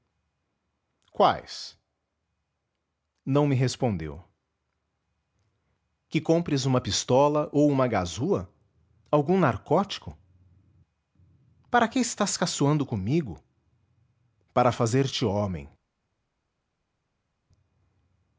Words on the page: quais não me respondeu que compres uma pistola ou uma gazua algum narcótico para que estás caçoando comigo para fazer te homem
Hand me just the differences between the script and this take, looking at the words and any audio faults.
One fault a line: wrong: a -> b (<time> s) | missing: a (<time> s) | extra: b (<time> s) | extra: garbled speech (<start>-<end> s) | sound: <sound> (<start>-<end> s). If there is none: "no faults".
no faults